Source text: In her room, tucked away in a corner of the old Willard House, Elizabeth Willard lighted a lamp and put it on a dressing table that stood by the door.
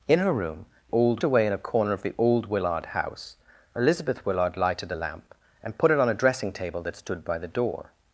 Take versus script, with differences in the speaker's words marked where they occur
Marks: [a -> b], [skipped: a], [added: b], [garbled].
In her room, [tucked -> old] away in a corner of the old Willard House, Elizabeth Willard lighted a lamp and put it on a dressing table that stood by the door.